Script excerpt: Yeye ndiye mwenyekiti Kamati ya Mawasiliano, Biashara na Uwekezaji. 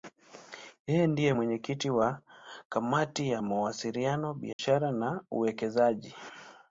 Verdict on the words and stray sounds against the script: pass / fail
fail